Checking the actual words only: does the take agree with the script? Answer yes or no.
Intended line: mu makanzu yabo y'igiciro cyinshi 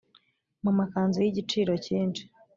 no